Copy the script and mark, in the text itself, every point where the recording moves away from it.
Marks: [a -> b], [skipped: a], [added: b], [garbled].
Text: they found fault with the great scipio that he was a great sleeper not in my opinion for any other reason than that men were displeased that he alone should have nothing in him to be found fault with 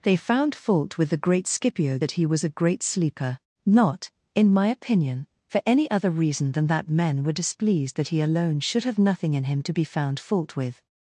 they found fault with the great scipio that he was a great sleeper not in my opinion for any other reason than that men were displeased that he alone should have nothing in him to be found fault with